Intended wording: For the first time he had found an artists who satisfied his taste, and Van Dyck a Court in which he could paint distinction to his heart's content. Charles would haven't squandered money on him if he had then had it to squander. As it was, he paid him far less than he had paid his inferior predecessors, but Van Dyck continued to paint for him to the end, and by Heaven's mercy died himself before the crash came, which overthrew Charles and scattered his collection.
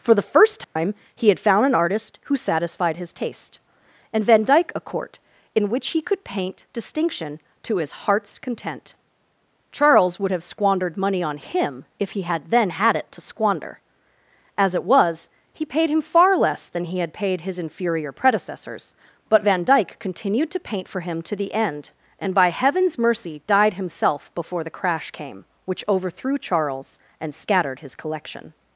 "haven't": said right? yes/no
no